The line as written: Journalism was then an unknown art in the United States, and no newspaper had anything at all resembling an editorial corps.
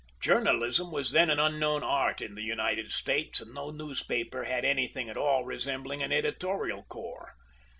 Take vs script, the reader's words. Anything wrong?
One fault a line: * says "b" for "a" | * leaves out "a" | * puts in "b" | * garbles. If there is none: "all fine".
all fine